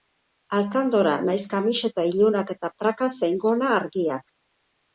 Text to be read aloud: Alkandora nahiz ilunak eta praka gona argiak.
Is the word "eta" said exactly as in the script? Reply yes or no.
yes